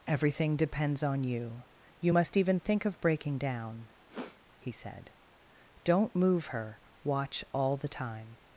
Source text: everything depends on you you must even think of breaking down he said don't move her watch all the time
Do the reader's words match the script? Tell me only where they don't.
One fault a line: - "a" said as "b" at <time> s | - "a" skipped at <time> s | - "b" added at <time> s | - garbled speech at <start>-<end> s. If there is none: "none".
none